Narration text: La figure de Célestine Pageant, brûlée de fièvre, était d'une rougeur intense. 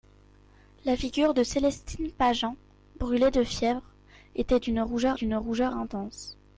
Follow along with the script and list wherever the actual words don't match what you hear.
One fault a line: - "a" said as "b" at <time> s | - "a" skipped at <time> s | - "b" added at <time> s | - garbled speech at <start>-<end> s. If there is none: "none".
- "d'une rougeur" added at 5.2 s